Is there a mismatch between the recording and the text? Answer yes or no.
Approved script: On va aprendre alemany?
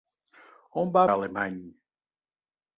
yes